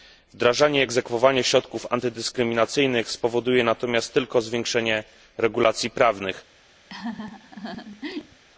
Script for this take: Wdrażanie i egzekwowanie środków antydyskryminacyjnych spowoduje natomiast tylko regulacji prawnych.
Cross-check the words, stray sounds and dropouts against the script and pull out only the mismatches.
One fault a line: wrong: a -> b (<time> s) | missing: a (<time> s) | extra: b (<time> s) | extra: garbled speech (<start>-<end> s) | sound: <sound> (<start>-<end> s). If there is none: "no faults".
extra: zwiększenie (4.4 s)
sound: laugh (6.9-8.4 s)